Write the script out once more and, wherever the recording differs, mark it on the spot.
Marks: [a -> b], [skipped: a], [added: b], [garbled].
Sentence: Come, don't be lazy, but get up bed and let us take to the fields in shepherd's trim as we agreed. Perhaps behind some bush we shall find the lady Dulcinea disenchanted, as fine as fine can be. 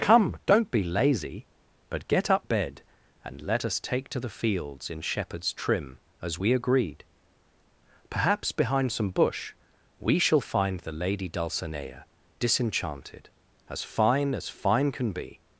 Come, don't be lazy, but get up bed and let us take to the fields in shepherd's trim as we agreed. Perhaps behind some bush we shall find the lady Dulcinea disenchanted, as fine as fine can be.